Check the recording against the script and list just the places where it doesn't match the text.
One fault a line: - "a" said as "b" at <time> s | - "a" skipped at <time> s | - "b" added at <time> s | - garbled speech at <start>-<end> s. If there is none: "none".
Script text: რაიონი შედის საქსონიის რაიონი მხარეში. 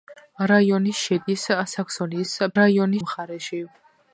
none